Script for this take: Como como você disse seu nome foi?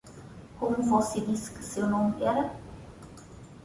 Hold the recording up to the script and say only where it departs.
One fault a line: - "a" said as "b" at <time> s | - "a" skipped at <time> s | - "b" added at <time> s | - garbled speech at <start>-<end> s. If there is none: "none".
- "como" skipped at 0.8 s
- "que" added at 1.5 s
- "foi" said as "era" at 2.2 s